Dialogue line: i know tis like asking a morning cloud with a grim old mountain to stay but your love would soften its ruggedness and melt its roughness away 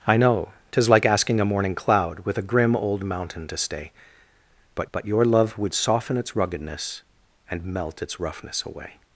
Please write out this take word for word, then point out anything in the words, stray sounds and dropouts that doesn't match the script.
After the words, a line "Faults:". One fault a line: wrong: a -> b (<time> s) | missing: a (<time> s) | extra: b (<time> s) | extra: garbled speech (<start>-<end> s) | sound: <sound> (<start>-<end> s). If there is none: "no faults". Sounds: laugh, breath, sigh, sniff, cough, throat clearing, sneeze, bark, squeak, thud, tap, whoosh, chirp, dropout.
i know tis like asking a morning cloud with a grim old mountain to stay but but your love would soften its ruggedness and melt its roughness away
Faults:
extra: but (4.9 s)